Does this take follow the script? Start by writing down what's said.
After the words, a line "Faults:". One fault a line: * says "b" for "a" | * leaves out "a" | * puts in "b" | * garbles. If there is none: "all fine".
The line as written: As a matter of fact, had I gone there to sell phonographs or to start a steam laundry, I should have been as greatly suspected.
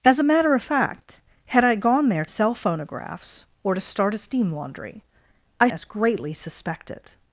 As a matter of fact, had I gone there sell phonographs or to start a steam laundry, I as greatly suspected.
Faults:
* leaves out "to"
* leaves out "should have been"